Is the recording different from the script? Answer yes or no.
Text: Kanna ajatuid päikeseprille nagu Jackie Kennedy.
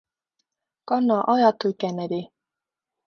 yes